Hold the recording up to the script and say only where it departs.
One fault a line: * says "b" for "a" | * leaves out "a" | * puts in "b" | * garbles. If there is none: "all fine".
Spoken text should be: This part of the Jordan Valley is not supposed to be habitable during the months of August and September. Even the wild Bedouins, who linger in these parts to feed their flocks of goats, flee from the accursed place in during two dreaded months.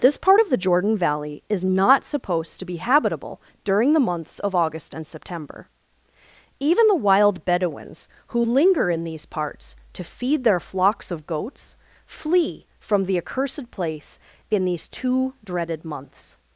* says "these" for "during"